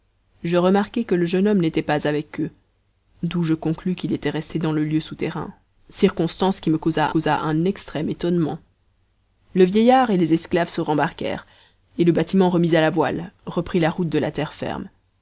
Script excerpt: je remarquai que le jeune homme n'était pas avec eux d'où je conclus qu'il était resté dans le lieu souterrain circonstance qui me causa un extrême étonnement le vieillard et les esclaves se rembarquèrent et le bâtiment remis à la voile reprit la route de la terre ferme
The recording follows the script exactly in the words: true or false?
false